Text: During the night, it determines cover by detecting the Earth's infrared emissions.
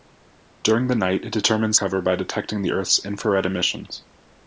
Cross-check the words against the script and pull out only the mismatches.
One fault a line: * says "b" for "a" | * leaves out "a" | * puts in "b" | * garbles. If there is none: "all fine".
all fine